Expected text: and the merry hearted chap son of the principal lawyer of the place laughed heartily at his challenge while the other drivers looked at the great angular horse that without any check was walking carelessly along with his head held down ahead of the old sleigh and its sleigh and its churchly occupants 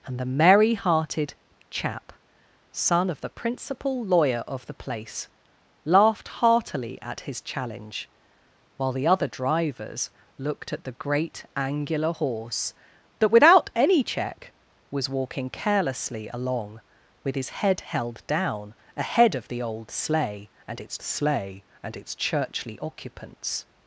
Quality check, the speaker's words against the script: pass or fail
pass